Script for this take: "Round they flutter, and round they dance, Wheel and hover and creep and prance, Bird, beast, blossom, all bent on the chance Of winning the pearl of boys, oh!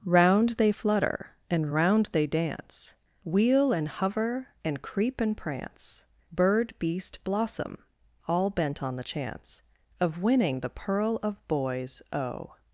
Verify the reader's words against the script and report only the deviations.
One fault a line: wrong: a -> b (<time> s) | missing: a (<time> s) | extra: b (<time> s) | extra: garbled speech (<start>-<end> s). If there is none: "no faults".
no faults